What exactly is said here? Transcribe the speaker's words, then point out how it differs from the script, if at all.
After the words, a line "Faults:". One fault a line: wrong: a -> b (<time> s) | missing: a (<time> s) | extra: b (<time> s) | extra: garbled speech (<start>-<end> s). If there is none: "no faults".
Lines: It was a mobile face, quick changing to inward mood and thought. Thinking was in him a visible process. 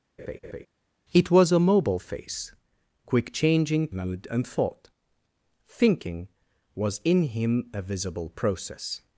It was a mobile face, quick changing mood and thought. Thinking was in him a visible process.
Faults:
missing: to inward (3.9 s)